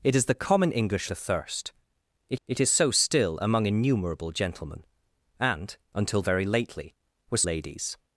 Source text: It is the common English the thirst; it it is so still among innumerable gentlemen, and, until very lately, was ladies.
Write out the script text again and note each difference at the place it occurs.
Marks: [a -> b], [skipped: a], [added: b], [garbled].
It is the common English the thirst; it it is so still among innumerable gentlemen, and, until very lately, was ladies.